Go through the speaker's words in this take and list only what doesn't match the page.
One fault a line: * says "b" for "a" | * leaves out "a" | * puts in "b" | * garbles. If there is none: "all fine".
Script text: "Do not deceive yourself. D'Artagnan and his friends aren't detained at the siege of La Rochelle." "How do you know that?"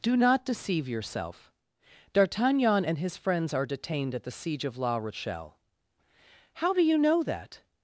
* says "are" for "aren't"